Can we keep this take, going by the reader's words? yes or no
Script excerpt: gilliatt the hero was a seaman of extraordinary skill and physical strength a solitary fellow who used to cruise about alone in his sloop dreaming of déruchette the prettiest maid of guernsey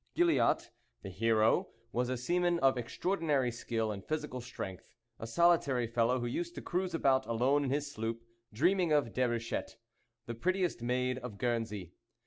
yes